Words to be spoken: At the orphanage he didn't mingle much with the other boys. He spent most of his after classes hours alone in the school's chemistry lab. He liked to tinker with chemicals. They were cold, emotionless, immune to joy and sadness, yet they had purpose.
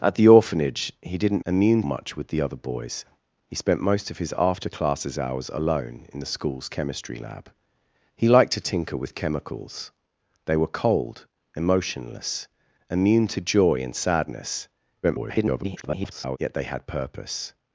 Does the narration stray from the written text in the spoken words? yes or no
yes